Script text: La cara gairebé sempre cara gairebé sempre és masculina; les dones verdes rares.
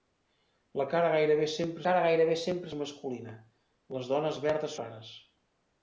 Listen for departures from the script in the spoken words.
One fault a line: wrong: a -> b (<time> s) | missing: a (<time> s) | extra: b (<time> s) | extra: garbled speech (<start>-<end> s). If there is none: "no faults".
no faults